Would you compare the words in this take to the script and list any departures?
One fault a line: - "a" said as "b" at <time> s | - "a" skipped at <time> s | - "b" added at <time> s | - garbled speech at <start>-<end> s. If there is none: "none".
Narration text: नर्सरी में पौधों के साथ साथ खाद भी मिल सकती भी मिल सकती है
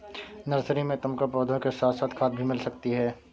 - "तुमको" added at 1.0 s
- "भी मिल सकती" skipped at 2.9 s